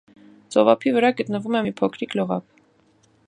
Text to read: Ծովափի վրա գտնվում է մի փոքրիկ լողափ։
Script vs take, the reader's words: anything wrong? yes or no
no